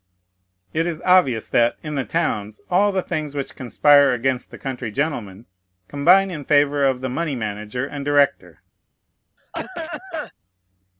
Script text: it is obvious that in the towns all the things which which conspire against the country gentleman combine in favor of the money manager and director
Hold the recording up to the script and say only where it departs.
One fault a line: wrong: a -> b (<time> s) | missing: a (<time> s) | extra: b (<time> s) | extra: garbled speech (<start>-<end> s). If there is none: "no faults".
missing: which (3.5 s)